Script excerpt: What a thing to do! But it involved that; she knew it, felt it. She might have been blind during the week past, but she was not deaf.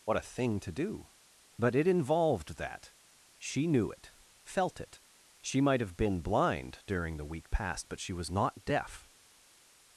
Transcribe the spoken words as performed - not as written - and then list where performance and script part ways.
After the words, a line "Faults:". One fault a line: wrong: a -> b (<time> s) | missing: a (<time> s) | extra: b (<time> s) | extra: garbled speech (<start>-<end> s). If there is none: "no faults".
What a thing to do! But it involved that; she knew it, felt it. She might have been blind during the week past, but she was not deaf.
Faults:
no faults